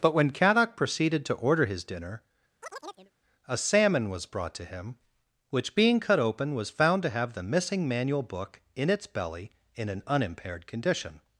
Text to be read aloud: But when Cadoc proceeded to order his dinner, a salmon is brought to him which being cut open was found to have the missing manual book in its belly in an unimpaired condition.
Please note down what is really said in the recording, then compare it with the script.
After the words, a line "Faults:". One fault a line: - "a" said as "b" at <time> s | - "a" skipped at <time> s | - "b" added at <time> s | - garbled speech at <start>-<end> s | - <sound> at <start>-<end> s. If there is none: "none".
But when Cadoc proceeded to order his dinner, a salmon was brought to him which being cut open was found to have the missing manual book in its belly in an unimpaired condition.
Faults:
- chirp at 2.6-3.1 s
- "is" said as "was" at 4.1 s